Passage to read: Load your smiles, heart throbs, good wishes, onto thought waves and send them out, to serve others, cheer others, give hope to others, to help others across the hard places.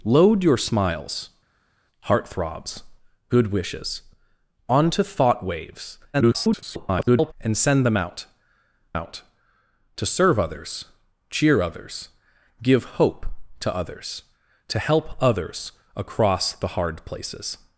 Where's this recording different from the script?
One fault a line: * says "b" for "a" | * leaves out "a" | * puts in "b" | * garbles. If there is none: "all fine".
* garbles
* puts in "out"